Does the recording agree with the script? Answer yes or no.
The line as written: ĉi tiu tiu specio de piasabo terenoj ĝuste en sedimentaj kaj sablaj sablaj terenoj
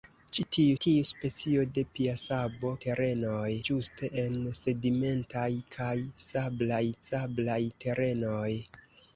yes